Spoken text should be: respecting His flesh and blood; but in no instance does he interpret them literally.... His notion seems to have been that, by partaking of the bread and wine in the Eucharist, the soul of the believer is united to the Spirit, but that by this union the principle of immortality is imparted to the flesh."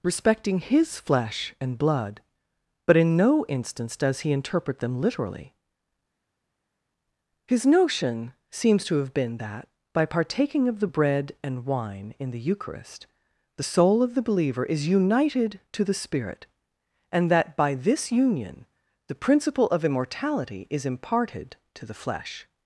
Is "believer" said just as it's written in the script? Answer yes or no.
yes